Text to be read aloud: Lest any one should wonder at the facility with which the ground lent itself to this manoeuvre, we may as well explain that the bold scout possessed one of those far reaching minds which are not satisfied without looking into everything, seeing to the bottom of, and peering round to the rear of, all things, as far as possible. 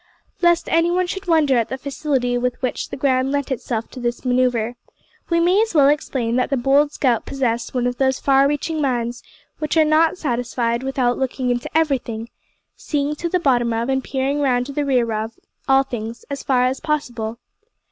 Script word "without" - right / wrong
right